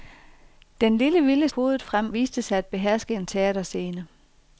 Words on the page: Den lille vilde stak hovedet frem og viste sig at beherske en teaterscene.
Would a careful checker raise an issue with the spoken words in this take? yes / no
yes